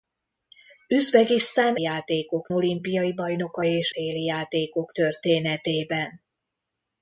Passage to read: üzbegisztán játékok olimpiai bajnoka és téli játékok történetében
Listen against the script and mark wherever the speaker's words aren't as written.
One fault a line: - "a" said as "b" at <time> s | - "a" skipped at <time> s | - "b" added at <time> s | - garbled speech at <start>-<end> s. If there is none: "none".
none